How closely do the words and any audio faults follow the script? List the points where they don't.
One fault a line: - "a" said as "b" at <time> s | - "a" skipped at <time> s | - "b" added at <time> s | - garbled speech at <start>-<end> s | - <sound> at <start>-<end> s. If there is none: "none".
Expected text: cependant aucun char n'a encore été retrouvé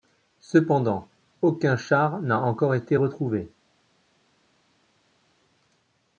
none